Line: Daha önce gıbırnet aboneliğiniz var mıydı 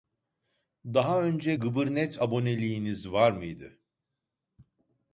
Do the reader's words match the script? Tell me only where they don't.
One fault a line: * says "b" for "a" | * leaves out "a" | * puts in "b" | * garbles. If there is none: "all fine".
all fine